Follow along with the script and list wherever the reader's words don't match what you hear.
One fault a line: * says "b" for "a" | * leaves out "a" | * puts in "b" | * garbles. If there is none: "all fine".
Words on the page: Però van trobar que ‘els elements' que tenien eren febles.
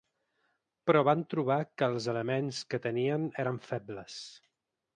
all fine